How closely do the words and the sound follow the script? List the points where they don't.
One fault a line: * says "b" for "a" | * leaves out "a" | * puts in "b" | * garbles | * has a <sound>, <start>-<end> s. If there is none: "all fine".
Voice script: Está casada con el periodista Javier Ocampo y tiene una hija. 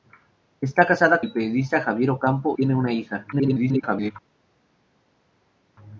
* leaves out "con"
* leaves out "y"
* garbles